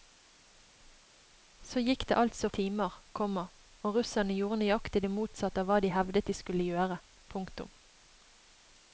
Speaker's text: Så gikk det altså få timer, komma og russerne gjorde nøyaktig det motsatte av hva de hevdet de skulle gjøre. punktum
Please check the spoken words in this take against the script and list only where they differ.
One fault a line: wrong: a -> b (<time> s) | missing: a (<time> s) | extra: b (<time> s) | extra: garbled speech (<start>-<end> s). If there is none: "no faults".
missing: få (2.5 s)